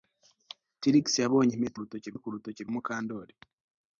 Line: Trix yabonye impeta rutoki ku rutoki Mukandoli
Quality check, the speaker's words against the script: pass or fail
pass